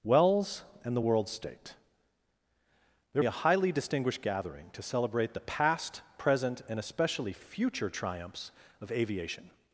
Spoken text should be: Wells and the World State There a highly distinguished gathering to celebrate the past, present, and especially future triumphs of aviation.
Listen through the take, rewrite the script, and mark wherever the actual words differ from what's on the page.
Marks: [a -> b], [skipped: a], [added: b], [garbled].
Wells and the World State There a highly distinguished gathering to celebrate the past, present, and especially future triumphs of aviation.